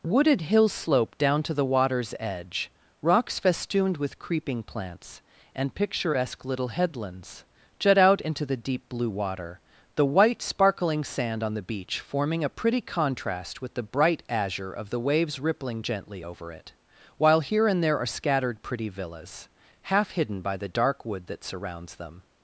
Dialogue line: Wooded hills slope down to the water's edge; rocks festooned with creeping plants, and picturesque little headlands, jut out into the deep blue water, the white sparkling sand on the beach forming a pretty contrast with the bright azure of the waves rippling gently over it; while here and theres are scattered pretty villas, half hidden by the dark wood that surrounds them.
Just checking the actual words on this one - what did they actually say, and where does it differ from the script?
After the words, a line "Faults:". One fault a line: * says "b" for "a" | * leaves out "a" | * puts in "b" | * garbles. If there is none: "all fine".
Wooded hills slope down to the water's edge; rocks festooned with creeping plants, and picturesque little headlands, jut out into the deep blue water, the white sparkling sand on the beach forming a pretty contrast with the bright azure of the waves rippling gently over it; while here and there are scattered pretty villas, half hidden by the dark wood that surrounds them.
Faults:
* says "there" for "theres"